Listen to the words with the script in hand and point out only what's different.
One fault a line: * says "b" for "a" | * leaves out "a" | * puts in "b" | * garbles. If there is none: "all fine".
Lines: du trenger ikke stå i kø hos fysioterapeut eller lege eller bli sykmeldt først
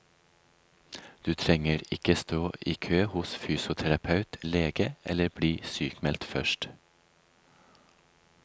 * leaves out "eller"